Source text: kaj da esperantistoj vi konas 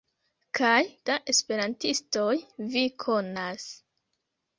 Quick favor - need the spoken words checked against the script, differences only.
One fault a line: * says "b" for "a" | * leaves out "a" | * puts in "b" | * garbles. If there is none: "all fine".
all fine